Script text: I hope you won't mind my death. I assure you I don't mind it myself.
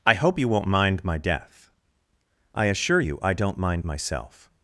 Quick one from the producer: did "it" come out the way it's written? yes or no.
no